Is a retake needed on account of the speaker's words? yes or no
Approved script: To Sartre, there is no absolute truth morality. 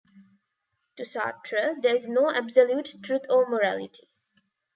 yes